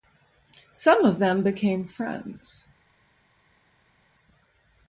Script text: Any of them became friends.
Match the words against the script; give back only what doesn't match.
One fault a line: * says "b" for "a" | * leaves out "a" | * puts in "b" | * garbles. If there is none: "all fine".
* says "Some" for "Any"